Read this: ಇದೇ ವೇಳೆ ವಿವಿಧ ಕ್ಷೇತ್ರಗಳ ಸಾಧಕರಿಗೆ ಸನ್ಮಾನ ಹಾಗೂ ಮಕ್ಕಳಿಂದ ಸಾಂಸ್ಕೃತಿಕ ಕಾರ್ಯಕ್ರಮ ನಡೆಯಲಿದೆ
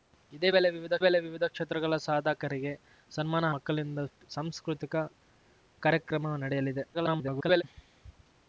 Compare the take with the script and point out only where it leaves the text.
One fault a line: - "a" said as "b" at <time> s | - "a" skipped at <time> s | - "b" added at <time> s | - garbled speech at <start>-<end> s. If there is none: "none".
- "ವೇಳೆ ವಿವಿಧ" added at 1.0 s
- "ಹಾಗೂ" skipped at 3.5 s
- garbled speech at 6.9-7.6 s